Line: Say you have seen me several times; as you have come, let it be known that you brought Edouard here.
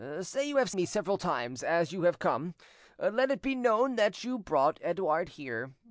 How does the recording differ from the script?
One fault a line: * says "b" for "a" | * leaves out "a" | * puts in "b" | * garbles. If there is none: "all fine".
* leaves out "seen"